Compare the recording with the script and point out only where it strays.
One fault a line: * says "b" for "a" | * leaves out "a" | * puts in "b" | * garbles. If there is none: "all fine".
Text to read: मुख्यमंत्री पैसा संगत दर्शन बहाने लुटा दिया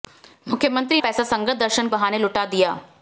all fine